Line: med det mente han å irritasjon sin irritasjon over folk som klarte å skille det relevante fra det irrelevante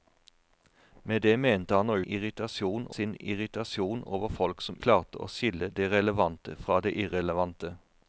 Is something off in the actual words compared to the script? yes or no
no